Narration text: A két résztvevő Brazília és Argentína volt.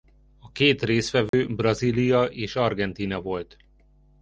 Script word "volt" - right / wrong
right